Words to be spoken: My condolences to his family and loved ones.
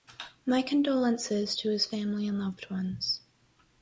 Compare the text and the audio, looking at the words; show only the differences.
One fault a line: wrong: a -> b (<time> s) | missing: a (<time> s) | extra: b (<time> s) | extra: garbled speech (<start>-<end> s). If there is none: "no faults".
no faults